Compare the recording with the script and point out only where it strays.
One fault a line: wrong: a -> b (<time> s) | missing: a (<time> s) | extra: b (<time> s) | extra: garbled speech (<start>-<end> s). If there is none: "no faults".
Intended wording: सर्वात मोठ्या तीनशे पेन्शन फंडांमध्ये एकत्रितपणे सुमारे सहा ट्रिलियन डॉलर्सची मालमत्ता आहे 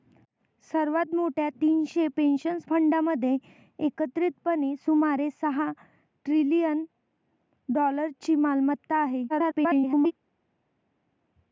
extra: garbled speech (9.3-10.1 s)